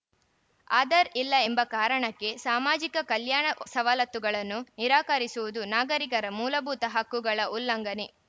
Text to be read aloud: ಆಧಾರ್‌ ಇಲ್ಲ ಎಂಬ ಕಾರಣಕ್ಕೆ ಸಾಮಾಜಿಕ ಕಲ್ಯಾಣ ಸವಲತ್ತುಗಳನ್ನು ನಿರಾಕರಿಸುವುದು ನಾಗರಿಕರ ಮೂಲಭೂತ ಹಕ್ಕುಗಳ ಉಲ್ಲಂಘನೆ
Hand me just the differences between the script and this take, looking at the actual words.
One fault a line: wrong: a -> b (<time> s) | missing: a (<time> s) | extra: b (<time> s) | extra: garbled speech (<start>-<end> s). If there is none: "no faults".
no faults